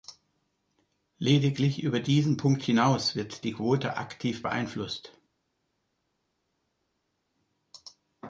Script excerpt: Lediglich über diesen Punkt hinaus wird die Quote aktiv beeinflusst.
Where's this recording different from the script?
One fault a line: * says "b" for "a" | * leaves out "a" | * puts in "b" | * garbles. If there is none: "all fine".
all fine